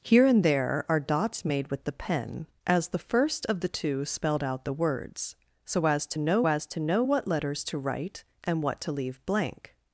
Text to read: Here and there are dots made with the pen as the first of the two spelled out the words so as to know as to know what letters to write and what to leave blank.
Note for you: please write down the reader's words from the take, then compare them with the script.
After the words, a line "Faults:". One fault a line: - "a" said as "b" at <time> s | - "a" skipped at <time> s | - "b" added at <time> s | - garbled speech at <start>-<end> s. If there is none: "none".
Here and there are dots made with the pen as the first of the two spelled out the words so as to know as to know what letters to write and what to leave blank.
Faults:
none